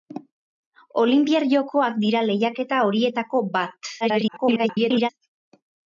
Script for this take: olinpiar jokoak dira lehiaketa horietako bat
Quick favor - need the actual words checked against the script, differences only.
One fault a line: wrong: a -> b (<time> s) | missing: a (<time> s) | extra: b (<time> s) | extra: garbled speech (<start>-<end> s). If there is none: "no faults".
extra: garbled speech (4.0-5.1 s)